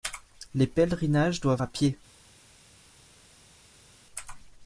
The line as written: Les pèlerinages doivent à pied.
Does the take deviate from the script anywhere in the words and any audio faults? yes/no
no